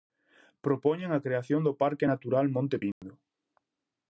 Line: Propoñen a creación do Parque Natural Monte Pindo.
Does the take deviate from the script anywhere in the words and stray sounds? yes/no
yes